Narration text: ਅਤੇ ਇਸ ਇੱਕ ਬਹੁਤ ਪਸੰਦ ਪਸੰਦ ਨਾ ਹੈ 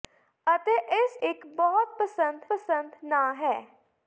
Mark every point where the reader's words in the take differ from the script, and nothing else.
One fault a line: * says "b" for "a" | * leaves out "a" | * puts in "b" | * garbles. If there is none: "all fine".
all fine